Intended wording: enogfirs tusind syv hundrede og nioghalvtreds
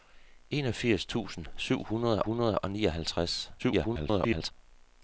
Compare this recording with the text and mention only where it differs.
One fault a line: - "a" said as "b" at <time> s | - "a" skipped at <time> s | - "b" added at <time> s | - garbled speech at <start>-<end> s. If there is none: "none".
- "hundrede" added at 2.2 s
- garbled speech at 3.6-4.5 s